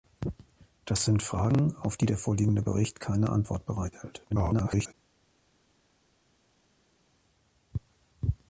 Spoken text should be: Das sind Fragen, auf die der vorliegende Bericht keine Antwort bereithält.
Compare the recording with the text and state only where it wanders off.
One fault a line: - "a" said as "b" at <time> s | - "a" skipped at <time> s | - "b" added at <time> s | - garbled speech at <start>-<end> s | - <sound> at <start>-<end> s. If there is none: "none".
- garbled speech at 4.3-4.9 s